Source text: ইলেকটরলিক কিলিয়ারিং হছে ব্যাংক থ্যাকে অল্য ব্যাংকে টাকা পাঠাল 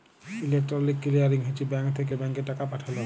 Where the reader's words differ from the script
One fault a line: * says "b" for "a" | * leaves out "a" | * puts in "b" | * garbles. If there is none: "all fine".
* leaves out "অল্য"